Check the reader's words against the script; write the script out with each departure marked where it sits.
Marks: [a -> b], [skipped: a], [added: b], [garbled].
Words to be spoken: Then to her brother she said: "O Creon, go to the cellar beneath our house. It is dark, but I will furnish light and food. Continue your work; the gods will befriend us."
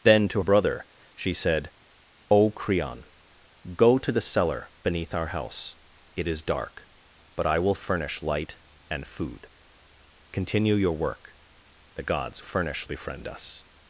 Then to [skipped: her] brother she said: "O Creon, go to the cellar beneath our house. It is dark, but I will furnish light and food. Continue your work; the gods [will -> furnish] befriend us."